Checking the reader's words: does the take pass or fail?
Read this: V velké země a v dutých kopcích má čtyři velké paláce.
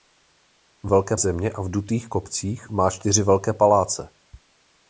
pass